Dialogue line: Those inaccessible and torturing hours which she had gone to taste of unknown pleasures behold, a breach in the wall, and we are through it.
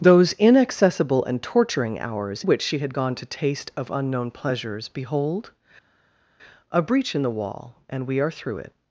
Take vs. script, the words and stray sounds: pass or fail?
pass